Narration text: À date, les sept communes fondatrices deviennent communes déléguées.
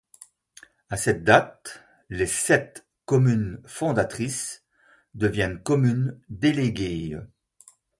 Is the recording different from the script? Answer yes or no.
yes